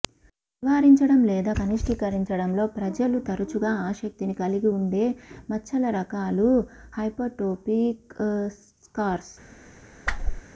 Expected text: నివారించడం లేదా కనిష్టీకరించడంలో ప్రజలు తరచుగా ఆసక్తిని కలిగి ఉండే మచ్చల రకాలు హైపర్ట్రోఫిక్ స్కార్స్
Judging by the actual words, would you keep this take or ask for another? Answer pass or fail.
pass